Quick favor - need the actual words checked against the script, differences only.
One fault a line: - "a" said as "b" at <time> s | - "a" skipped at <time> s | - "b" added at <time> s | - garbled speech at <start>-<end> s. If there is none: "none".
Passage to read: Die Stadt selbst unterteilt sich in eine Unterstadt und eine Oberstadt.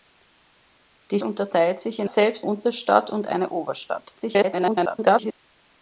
- "Stadt selbst" skipped at 1.2 s
- "eine" said as "selbst" at 2.1 s
- garbled speech at 4.2-5.3 s